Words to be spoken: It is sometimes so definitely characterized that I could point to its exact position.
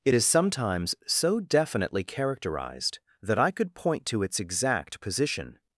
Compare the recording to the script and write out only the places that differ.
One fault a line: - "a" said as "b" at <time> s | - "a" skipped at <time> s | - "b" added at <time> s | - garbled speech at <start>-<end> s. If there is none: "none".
none